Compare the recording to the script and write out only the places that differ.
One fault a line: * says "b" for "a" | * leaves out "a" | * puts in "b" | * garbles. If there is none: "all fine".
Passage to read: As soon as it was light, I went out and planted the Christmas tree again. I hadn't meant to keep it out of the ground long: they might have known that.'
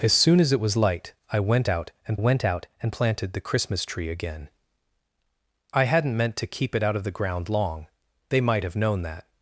* puts in "went out and"